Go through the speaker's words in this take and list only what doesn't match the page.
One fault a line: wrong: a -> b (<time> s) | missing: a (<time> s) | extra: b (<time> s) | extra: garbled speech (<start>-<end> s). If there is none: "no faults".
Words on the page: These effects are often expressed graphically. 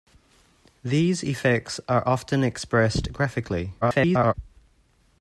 extra: garbled speech (3.8-4.3 s)